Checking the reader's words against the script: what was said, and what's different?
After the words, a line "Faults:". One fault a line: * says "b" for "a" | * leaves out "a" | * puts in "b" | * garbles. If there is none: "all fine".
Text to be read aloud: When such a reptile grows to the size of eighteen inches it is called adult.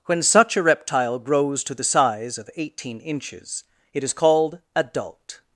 When such a reptile grows to the size of eighteen inches it is called adult.
Faults:
all fine